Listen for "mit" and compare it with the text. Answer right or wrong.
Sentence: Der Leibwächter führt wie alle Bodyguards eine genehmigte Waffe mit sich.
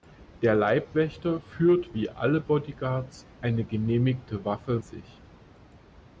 wrong